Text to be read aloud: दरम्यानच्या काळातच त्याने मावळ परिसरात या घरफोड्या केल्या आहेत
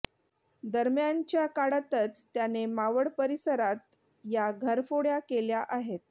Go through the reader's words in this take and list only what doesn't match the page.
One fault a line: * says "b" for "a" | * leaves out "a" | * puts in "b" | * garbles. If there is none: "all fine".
all fine